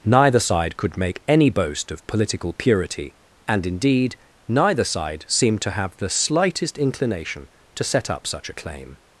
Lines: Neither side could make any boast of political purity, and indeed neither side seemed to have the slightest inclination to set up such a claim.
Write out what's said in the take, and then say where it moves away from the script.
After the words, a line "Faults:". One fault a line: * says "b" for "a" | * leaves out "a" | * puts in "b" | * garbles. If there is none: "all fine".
Neither side could make any boast of political purity, and indeed neither side seemed to have the slightest inclination to set up such a claim.
Faults:
all fine